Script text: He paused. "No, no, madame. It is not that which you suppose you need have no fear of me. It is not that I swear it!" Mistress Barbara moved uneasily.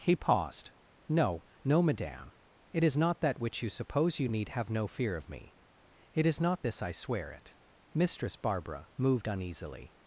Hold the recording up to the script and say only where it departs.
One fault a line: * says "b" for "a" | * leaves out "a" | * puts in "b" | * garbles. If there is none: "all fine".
* says "this" for "that"